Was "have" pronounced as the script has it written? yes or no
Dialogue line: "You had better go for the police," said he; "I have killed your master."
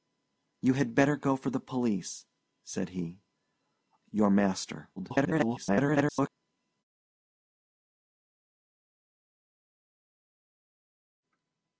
no